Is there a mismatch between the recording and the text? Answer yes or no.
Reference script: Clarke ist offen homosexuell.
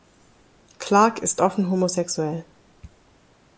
no